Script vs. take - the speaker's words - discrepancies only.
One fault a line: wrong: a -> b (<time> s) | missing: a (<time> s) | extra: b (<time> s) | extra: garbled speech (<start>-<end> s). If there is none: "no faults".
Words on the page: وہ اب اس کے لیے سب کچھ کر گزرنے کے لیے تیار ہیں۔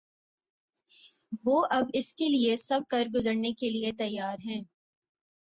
missing: کچھ (2.8 s)